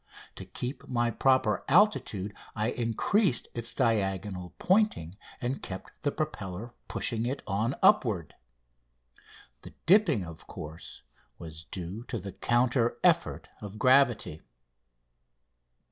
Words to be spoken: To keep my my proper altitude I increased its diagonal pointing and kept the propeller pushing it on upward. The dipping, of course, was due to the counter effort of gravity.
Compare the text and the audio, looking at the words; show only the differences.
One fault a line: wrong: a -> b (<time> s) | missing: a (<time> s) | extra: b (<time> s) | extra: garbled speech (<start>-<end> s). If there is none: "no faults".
missing: my (1.1 s)